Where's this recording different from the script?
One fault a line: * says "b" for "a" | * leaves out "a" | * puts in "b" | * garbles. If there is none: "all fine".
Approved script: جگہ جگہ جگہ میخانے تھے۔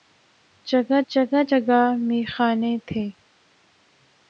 all fine